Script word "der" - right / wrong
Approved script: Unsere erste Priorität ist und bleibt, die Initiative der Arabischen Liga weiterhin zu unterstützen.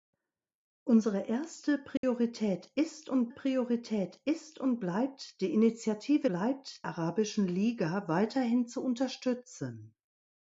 wrong